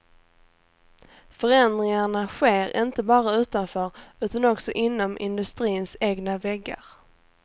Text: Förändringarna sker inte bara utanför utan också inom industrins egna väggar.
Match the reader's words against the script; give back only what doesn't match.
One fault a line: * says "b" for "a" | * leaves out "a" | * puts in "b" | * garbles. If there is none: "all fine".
all fine